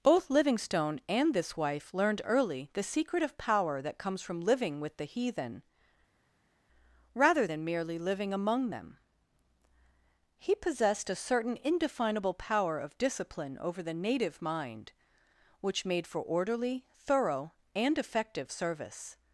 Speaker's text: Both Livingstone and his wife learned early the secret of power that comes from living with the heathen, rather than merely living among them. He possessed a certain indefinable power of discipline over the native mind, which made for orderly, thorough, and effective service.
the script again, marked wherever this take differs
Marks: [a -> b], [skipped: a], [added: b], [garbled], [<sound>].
Both Livingstone and [his -> this] wife learned early the secret of power that comes from living with the heathen, rather than merely living among them. He possessed a certain indefinable power of discipline over the native mind, which made for orderly, thorough, and effective service.